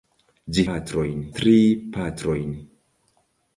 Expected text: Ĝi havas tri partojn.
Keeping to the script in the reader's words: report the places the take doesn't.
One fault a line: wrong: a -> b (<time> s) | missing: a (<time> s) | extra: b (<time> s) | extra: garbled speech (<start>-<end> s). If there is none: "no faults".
wrong: havas -> partojn (0.7 s)